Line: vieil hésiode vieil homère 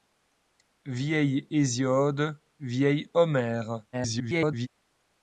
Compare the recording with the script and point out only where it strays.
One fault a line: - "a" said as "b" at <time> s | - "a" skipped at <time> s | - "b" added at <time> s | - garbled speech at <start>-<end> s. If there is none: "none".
- garbled speech at 3.9-4.7 s